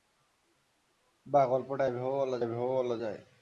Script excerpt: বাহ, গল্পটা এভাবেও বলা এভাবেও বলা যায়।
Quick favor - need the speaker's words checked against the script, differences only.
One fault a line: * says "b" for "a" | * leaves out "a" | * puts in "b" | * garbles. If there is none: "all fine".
all fine